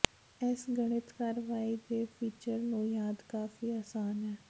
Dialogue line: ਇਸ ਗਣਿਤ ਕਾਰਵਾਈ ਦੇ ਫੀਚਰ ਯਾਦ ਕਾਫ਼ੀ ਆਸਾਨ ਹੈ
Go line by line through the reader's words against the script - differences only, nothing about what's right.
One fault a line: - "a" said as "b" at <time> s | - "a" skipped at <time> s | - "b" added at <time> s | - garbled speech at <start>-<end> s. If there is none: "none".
- "ਨੂੰ" added at 2.6 s